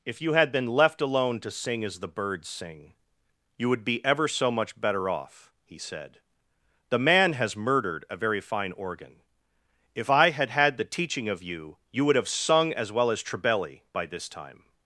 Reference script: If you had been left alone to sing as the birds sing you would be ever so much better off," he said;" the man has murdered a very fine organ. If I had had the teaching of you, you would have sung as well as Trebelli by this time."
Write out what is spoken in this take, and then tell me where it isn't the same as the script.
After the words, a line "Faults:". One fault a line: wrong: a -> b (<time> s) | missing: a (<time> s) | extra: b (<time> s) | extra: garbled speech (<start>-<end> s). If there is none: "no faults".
If you had been left alone to sing as the birds sing you would be ever so much better off," he said;" the man has murdered a very fine organ. If I had had the teaching of you, you would have sung as well as Trebelli by this time."
Faults:
no faults